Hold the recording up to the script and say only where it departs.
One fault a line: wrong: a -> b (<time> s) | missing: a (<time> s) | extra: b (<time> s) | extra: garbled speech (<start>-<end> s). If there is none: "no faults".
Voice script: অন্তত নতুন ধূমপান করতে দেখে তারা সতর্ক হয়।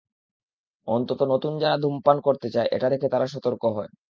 extra: যারা (1.6 s)
extra: চায় এটা (2.5 s)